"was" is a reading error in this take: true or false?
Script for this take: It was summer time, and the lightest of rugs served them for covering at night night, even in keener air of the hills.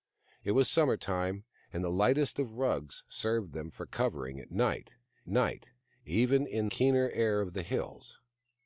false